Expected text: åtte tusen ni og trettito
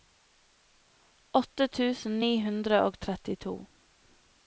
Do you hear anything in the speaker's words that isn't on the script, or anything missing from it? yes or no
yes